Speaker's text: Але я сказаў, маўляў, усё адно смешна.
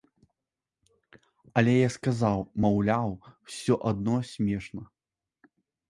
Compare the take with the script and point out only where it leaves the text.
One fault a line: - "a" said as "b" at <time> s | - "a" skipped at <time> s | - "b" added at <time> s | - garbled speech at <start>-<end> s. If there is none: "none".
none